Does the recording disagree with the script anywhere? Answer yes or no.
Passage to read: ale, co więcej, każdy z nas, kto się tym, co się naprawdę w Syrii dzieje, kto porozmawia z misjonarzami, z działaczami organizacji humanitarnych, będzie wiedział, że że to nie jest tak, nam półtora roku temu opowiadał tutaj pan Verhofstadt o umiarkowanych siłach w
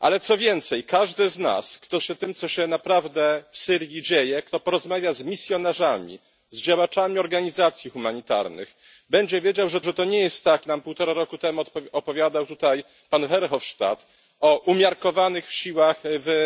no